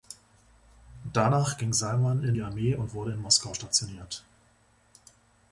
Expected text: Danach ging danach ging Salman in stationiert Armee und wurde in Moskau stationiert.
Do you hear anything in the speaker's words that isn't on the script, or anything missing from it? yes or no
yes